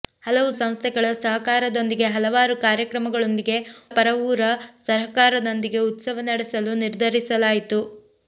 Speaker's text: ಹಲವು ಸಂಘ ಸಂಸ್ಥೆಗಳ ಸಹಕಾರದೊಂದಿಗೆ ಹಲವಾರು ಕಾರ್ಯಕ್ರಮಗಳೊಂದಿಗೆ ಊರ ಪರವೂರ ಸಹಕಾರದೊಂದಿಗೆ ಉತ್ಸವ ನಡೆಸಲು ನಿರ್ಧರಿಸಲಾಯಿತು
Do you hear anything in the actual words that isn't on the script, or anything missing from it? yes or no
yes